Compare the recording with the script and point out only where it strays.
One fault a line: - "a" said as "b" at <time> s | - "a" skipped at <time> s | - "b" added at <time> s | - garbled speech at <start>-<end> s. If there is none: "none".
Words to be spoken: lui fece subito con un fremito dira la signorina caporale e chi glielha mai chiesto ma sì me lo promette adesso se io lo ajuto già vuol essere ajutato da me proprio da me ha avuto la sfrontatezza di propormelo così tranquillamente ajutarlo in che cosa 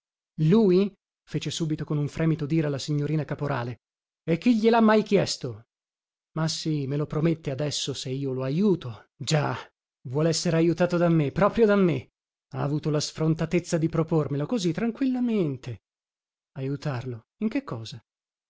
none